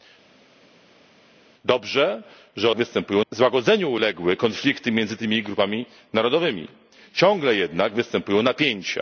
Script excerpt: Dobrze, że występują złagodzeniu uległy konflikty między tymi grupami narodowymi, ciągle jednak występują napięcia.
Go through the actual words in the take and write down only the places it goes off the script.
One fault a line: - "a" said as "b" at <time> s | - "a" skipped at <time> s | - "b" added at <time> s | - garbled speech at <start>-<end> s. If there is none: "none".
none